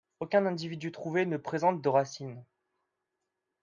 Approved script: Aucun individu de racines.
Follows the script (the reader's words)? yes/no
no